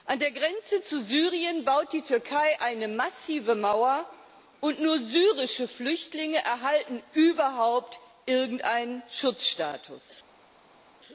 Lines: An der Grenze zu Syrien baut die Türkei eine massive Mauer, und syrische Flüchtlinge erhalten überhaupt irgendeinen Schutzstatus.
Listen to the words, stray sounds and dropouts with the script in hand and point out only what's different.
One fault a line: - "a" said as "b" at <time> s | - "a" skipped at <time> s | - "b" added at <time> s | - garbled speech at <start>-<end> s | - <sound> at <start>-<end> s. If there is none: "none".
- "nur" added at 4.8 s